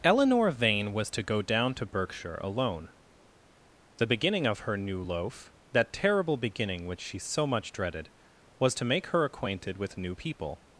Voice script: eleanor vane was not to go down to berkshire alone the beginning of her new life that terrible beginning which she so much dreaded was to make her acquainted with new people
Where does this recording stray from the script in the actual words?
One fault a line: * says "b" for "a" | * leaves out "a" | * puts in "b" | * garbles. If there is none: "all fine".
* leaves out "not"
* says "loaf" for "life"